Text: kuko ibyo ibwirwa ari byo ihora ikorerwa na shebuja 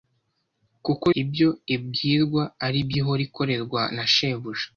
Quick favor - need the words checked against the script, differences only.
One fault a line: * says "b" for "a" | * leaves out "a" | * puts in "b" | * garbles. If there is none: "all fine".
all fine